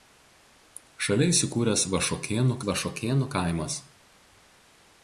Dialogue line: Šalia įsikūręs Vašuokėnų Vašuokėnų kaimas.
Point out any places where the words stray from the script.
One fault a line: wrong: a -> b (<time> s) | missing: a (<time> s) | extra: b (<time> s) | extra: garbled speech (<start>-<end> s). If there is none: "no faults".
no faults